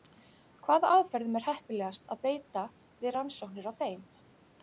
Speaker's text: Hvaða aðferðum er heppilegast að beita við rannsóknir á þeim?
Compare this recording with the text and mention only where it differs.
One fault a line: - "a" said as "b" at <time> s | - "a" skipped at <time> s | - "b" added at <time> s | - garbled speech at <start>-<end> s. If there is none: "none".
none